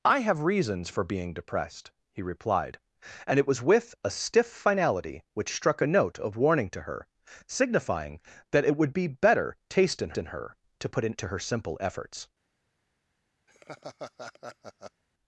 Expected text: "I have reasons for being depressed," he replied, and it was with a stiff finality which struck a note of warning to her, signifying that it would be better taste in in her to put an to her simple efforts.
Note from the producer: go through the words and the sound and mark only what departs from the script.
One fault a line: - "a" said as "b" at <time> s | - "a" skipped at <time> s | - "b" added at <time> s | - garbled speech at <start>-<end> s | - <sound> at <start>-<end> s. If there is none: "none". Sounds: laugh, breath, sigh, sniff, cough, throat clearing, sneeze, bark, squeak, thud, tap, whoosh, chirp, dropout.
- laugh at 13.5-15.0 s